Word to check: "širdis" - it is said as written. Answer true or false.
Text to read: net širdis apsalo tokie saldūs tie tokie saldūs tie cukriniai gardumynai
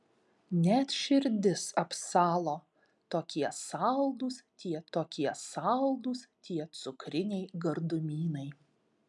true